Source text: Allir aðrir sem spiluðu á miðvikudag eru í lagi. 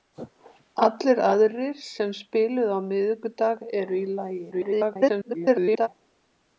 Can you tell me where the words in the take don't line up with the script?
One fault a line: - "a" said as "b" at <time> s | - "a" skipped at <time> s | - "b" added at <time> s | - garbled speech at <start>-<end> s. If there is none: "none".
- garbled speech at 4.5-5.9 s